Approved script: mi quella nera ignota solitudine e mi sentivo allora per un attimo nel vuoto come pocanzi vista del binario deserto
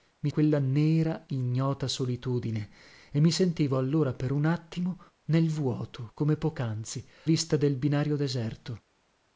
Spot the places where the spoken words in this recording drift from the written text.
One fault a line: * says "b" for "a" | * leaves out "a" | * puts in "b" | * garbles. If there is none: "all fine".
all fine